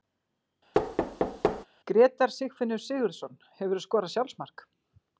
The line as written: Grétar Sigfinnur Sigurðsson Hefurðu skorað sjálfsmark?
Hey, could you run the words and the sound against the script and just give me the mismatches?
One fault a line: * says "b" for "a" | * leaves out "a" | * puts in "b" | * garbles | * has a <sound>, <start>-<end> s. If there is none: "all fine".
* has a thud, 0.7-1.7 s